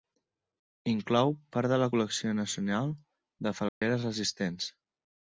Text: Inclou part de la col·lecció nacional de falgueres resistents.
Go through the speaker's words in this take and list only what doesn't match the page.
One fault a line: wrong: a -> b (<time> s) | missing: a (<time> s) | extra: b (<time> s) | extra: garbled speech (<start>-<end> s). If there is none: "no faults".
no faults